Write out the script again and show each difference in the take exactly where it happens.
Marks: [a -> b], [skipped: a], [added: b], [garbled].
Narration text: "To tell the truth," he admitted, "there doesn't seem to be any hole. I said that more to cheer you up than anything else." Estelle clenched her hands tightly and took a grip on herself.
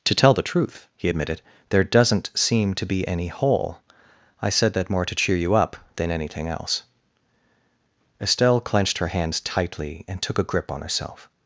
"To tell the truth," he admitted, "there doesn't seem to be any hole. I said that more to cheer you up than anything else." Estelle clenched her hands tightly and took a grip on herself.